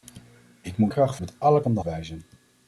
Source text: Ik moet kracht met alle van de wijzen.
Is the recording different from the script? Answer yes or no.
no